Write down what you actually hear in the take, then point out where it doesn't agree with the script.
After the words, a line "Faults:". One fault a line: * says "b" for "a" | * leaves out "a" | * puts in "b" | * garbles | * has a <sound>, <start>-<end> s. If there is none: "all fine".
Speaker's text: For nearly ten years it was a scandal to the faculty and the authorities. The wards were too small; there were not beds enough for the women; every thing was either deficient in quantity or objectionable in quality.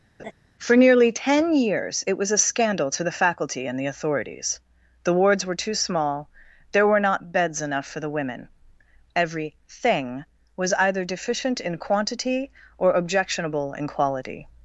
For nearly ten years it was a scandal to the faculty and the authorities. The wards were too small; there were not beds enough for the women; every thing was either deficient in quantity or objectionable in quality.
Faults:
* has a laugh, 0.2-0.3 s